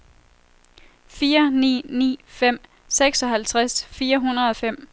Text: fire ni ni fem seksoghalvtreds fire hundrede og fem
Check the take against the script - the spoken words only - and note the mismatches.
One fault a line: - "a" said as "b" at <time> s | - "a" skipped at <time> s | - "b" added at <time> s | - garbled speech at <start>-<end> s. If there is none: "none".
none